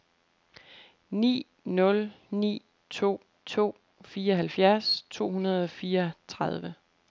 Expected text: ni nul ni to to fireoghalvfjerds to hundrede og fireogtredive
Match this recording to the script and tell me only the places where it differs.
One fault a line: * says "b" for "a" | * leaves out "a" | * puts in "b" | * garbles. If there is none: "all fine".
all fine